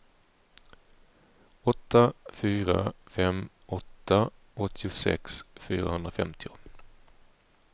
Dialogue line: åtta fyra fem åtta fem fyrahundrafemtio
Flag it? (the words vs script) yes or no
yes